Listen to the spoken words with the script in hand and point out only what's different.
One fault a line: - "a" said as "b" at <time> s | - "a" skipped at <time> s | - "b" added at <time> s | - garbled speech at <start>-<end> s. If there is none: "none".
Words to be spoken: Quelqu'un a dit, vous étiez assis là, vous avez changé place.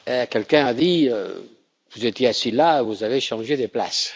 - "de" added at 3.6 s